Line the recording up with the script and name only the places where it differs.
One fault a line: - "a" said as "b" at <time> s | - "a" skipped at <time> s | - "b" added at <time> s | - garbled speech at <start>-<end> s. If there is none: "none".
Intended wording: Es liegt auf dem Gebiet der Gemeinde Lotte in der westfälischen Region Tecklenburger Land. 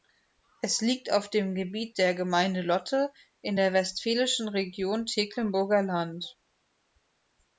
none